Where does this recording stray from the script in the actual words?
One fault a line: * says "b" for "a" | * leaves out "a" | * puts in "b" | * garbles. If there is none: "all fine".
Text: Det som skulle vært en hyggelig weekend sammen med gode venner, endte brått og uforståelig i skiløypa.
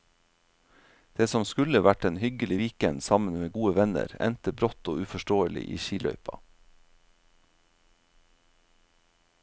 all fine